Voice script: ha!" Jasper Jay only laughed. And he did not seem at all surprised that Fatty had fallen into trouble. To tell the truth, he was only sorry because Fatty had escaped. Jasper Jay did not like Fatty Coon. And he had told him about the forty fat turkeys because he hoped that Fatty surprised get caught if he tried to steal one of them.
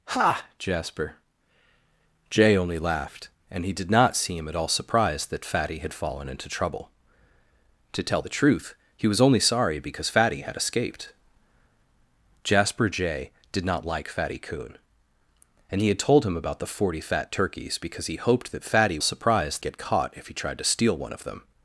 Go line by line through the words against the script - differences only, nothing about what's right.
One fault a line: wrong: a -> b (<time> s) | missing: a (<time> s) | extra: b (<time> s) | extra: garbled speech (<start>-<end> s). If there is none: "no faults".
no faults